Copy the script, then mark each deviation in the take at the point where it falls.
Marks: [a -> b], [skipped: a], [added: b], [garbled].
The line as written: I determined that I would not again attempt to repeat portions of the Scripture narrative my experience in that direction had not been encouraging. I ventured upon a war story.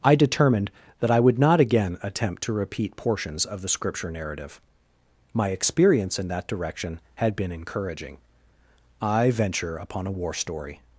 I determined that I would not again attempt to repeat portions of the Scripture narrative my experience in that direction had [skipped: not] been encouraging. I [ventured -> venture] upon a war story.